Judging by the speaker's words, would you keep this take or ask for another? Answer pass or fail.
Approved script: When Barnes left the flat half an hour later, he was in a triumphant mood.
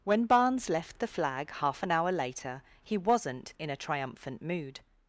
fail